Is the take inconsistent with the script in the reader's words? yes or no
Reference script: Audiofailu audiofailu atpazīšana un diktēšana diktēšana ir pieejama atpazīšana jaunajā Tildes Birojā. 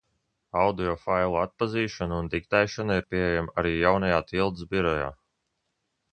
yes